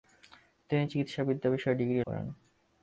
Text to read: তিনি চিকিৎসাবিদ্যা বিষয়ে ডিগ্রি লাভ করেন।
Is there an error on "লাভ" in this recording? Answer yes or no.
yes